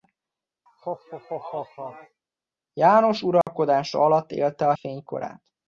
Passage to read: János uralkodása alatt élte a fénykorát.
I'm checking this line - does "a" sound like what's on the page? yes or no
yes